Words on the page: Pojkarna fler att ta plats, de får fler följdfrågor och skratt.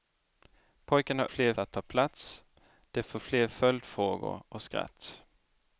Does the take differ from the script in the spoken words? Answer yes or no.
no